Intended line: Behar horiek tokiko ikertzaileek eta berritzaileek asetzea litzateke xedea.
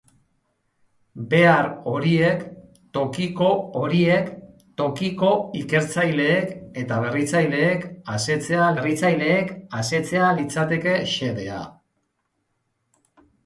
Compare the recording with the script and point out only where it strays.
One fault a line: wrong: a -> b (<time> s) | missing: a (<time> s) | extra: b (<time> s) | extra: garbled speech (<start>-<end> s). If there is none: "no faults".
extra: horiek tokiko (3.8 s)
extra: berritzaileek asetzea (8.8 s)